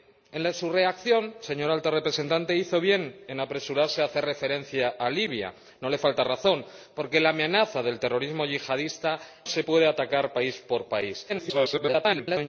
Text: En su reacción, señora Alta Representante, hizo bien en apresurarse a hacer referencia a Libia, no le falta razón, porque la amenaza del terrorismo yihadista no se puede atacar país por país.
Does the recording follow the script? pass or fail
fail